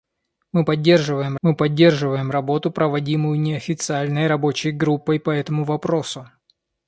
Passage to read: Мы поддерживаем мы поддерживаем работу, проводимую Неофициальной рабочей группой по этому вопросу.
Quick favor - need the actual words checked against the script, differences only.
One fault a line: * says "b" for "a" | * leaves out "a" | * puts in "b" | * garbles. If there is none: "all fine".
all fine